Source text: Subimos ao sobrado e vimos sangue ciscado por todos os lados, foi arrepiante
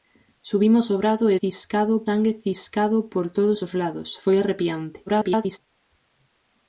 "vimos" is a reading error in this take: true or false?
true